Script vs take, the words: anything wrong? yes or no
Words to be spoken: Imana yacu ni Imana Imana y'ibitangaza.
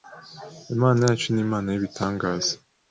yes